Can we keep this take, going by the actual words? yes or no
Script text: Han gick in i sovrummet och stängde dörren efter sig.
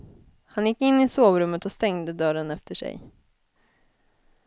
yes